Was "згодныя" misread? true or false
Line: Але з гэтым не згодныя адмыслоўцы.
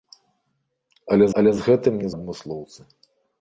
true